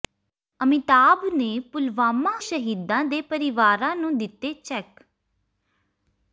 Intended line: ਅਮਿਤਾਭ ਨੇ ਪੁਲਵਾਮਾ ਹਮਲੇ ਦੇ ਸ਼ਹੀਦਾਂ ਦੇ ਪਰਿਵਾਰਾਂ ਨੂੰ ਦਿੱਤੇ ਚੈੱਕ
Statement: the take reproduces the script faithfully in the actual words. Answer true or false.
false